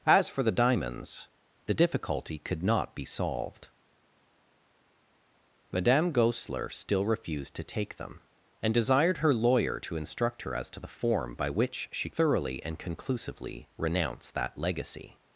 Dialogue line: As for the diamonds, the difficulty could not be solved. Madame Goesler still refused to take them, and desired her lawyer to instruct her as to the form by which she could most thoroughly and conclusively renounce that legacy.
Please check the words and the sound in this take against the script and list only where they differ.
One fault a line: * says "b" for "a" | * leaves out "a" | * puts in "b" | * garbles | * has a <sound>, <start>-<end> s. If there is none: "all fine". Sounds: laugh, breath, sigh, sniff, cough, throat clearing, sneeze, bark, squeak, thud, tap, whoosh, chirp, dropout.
* leaves out "could most"